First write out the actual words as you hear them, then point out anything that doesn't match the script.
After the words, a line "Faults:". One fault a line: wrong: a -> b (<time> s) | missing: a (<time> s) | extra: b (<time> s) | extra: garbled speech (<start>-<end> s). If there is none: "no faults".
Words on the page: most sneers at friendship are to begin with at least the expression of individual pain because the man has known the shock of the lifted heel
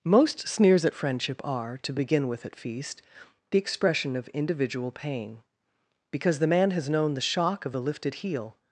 most sneers at friendship are to begin with at feast the expression of individual pain because the man has known the shock of the lifted heel
Faults:
wrong: least -> feast (2.6 s)